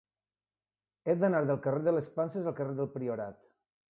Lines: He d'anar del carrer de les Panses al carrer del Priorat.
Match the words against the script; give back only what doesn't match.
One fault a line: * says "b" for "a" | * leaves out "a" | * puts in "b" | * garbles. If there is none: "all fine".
all fine